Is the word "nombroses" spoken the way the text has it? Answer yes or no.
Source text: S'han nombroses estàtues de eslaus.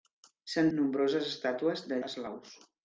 yes